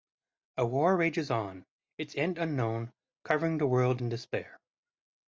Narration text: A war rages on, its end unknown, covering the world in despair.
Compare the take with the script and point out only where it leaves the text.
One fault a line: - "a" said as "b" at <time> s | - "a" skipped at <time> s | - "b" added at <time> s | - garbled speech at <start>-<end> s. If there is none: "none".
none